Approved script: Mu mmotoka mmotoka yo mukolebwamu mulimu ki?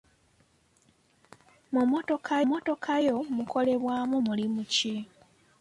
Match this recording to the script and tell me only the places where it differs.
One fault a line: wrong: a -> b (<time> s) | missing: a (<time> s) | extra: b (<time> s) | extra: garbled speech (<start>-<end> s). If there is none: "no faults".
no faults